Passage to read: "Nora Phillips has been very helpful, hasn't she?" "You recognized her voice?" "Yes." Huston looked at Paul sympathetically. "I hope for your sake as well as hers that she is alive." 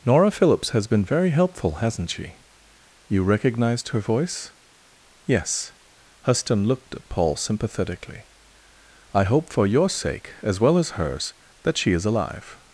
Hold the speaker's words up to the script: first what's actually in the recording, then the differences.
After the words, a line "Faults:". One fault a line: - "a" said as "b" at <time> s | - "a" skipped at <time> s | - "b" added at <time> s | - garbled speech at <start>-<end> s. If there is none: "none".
"Nora Phillips has been very helpful, hasn't she?" "You recognized her voice?" "Yes." Huston looked at Paul sympathetically. "I hope for your sake as well as hers that she is alive."
Faults:
none